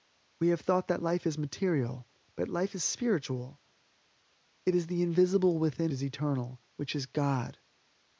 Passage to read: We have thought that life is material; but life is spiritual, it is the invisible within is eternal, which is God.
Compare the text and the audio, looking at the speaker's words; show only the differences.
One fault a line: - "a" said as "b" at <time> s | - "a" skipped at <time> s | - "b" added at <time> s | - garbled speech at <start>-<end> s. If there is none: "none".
none